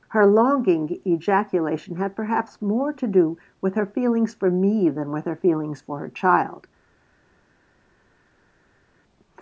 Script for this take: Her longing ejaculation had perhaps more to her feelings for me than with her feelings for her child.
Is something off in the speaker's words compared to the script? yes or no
yes